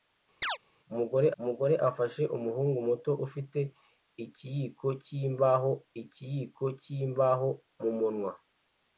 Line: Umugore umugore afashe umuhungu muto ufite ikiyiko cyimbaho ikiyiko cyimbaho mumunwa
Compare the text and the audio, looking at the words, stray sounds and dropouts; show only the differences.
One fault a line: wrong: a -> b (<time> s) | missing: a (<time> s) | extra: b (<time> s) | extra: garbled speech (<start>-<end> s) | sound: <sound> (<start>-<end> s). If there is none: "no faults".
sound: chirp (0.4-0.6 s)